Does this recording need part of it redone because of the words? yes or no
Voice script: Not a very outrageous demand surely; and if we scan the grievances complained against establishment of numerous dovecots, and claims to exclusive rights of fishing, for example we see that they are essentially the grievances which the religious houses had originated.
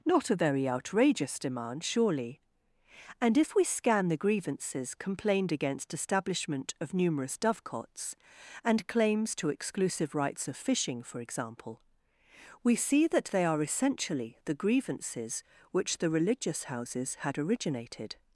no